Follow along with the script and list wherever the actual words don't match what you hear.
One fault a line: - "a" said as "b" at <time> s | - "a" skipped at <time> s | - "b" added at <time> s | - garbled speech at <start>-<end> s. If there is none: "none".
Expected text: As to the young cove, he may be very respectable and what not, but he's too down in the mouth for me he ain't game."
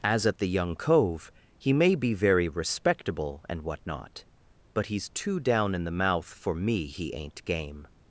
- "to" said as "at" at 0.2 s